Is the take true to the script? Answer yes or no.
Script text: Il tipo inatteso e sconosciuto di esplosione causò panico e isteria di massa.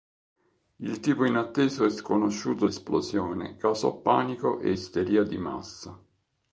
no